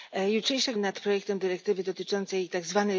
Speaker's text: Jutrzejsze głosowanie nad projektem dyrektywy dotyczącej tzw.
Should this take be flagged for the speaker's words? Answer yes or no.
yes